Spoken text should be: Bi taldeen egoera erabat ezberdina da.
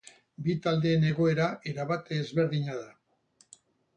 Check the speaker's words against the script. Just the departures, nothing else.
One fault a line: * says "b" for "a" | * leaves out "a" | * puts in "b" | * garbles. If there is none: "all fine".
all fine